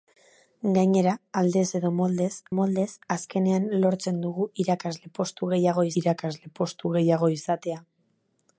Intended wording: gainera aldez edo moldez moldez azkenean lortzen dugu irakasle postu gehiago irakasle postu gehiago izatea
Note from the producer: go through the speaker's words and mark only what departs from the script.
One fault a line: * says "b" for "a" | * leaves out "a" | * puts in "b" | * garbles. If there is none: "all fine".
all fine